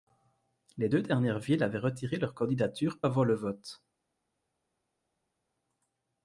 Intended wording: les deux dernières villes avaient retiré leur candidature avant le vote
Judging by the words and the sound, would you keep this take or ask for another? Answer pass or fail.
pass